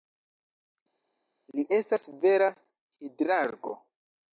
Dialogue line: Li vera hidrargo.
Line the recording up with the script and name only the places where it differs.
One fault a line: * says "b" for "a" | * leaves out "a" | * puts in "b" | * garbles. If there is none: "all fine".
* puts in "estas"